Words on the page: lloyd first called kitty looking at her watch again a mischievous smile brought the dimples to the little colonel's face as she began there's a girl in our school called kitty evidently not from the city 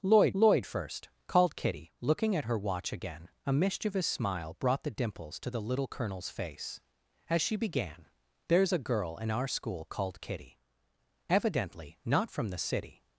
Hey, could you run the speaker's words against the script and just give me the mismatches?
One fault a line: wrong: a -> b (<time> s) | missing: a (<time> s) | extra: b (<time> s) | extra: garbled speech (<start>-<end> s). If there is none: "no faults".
extra: lloyd (0.3 s)